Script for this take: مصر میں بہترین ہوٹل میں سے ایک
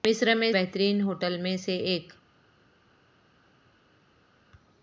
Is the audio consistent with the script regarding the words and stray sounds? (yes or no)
yes